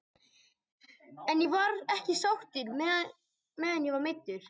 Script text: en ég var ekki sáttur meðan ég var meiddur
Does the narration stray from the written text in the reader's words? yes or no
no